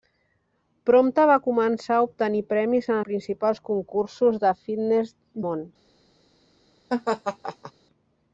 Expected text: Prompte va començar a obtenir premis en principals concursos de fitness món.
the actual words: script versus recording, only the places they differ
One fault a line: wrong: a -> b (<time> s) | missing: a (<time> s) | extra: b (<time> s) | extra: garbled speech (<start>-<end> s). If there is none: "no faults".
no faults